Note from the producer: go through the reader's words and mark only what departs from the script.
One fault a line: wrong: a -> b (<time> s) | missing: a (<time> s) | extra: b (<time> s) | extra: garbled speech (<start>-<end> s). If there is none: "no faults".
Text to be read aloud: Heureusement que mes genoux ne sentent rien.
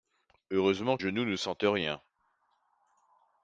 missing: que mes (1.0 s)